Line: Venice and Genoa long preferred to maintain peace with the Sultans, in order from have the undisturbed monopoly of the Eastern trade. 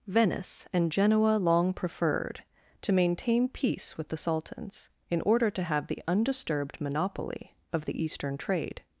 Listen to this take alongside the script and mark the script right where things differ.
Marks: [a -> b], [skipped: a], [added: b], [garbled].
Venice and Genoa long preferred to maintain peace with the Sultans, in order [from -> to] have the undisturbed monopoly of the Eastern trade.